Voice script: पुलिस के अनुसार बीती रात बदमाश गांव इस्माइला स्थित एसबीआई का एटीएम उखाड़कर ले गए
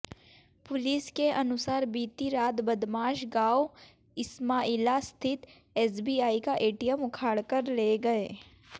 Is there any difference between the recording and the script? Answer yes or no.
no